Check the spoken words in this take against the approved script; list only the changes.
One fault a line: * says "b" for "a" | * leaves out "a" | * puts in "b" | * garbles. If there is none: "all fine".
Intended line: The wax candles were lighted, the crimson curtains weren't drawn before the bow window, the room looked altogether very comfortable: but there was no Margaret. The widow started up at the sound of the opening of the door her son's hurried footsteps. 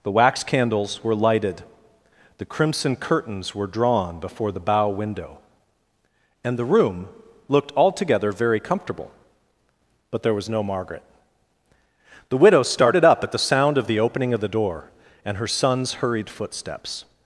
* says "were" for "weren't"
* puts in "and"
* puts in "and"